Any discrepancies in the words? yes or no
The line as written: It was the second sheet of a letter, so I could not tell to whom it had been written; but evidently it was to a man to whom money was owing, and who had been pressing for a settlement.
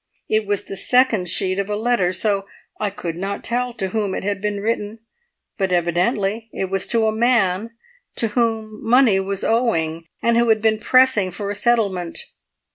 no